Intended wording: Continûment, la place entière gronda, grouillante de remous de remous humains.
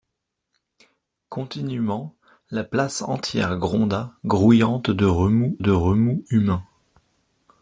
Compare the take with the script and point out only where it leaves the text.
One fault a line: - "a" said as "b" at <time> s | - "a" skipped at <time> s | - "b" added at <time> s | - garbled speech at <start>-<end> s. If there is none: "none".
none